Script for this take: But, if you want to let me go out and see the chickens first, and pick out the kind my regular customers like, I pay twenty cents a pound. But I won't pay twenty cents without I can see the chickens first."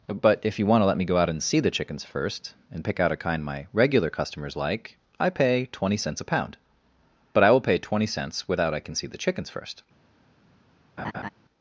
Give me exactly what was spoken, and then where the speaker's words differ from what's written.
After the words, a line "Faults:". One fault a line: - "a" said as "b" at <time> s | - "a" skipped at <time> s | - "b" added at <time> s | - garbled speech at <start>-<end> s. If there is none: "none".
But, if you want to let me go out and see the chickens first, and pick out a kind my regular customers like, I pay twenty cents a pound. But I will pay twenty cents without I can see the chickens first."
Faults:
- "the" said as "a" at 3.1 s
- "won't" said as "will" at 7.5 s